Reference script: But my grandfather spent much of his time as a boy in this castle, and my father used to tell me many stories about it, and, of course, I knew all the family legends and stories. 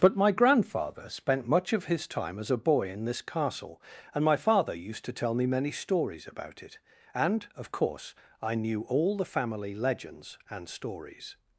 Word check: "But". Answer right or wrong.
right